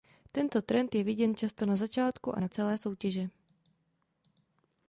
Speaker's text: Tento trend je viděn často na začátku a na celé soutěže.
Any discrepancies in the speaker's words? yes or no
no